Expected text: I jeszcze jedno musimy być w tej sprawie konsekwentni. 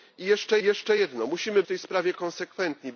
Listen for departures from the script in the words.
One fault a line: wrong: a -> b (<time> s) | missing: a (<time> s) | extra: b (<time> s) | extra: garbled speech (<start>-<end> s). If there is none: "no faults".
extra: jeszcze (0.6 s)
missing: być (1.6 s)